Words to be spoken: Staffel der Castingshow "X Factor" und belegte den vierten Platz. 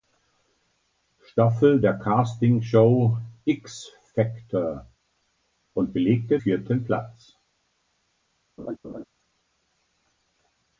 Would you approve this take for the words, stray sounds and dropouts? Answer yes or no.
no